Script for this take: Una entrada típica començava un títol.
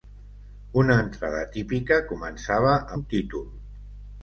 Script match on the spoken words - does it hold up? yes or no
yes